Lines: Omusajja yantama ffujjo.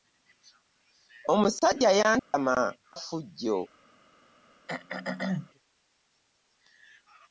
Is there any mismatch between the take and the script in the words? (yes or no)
no